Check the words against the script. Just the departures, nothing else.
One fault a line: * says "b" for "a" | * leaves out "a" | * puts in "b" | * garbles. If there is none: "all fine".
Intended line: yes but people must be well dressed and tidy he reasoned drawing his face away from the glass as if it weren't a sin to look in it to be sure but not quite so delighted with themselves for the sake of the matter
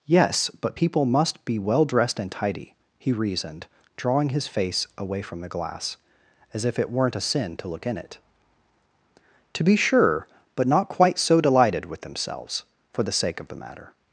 all fine